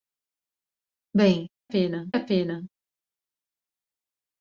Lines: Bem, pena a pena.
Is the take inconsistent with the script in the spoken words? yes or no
no